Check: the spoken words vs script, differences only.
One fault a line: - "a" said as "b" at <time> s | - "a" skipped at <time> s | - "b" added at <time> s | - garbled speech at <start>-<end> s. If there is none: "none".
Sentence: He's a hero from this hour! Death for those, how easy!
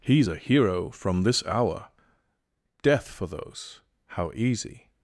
none